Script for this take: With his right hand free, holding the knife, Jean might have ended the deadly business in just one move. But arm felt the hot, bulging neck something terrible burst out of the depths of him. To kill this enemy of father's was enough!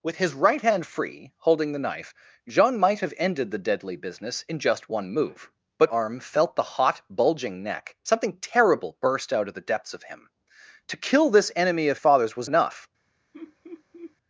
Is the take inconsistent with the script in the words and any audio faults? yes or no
yes